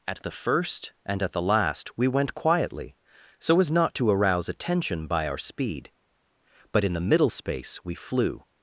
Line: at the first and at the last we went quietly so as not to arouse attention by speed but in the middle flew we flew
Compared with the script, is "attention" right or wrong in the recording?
right